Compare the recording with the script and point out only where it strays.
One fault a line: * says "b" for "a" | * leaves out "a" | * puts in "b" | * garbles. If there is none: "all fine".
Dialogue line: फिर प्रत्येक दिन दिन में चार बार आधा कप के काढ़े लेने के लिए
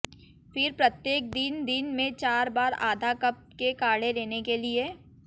all fine